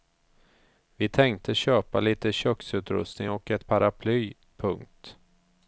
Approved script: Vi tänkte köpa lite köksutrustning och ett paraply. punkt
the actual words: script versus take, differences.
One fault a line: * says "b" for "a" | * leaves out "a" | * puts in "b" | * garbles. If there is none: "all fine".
all fine